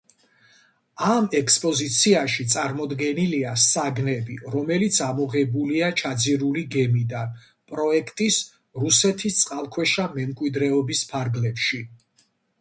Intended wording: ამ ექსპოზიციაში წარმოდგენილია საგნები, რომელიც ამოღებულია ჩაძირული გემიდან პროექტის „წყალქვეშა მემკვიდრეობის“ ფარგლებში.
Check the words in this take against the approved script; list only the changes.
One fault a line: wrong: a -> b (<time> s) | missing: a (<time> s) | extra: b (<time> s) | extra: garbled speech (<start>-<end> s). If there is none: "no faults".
extra: რუსეთის (8.9 s)